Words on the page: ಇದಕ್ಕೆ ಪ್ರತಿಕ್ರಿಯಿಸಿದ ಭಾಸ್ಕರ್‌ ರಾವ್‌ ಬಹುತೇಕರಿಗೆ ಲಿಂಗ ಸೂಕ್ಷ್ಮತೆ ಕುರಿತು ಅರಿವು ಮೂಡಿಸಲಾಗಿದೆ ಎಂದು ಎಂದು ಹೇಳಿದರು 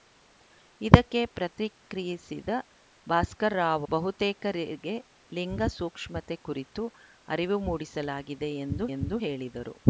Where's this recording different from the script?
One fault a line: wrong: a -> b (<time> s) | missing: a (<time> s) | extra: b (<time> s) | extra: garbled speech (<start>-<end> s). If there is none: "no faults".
no faults